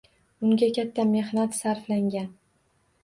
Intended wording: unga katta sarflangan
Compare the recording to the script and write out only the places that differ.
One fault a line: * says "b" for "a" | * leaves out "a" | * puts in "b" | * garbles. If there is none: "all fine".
* puts in "mehnat"